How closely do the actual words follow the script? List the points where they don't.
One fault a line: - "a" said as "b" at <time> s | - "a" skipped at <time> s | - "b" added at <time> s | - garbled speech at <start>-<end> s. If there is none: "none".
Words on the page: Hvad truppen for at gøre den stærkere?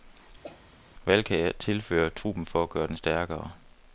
- "kan jeg tilføre" added at 1.2 s